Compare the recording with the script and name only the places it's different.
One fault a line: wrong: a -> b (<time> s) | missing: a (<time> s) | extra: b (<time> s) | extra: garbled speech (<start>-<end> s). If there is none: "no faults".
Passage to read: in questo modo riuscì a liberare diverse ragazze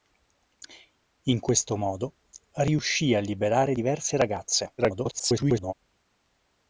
extra: garbled speech (4.8-5.7 s)